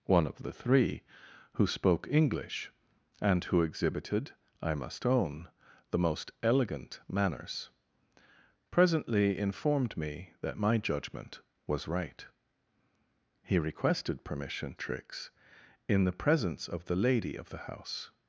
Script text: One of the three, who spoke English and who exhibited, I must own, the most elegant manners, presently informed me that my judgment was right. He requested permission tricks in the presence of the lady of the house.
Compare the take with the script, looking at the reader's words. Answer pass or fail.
pass